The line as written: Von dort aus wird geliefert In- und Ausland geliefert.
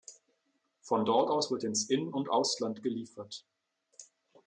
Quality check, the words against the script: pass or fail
fail